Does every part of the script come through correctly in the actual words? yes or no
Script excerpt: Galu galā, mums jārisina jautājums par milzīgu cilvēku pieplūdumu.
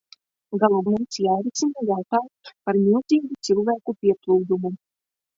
no